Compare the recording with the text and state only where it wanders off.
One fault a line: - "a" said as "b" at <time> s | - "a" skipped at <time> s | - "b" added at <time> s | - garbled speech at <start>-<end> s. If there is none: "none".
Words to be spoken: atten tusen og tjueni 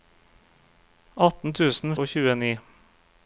none